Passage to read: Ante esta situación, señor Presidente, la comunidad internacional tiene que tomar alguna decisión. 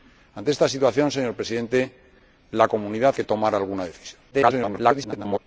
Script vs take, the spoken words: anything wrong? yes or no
yes